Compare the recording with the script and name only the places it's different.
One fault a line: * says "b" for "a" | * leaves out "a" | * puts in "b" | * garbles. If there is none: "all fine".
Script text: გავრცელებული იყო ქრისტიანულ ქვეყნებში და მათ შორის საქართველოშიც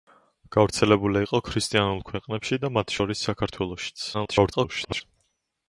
* garbles